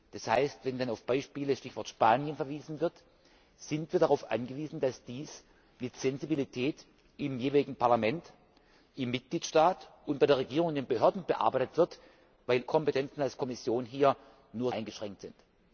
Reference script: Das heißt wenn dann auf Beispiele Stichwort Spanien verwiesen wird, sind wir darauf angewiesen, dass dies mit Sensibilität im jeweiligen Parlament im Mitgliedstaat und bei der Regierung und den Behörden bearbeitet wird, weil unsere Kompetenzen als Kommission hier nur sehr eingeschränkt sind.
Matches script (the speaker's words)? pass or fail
fail